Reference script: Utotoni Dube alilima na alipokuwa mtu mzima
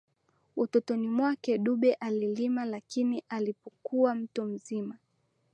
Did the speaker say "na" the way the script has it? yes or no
no